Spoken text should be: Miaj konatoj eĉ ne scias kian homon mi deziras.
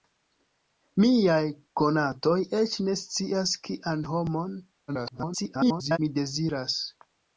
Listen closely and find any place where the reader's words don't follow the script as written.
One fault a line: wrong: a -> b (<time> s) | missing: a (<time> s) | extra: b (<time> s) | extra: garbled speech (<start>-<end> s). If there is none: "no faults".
extra: garbled speech (4.9-6.0 s)